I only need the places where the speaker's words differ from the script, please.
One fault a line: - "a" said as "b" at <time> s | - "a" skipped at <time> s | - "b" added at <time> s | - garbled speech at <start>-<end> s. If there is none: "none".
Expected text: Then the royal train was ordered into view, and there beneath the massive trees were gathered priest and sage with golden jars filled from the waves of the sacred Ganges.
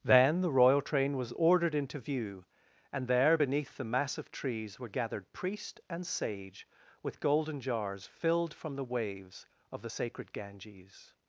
none